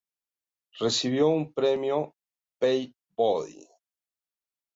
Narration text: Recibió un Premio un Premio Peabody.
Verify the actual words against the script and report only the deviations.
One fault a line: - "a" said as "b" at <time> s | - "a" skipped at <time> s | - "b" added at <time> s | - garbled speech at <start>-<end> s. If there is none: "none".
- "un Premio" skipped at 2.1 s